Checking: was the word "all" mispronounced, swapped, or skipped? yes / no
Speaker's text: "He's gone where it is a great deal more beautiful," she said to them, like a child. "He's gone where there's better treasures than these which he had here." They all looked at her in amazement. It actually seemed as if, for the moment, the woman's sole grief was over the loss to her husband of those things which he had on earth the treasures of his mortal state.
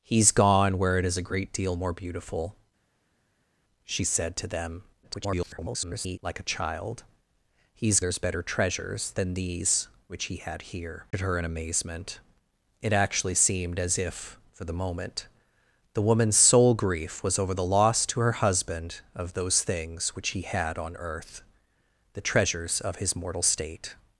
yes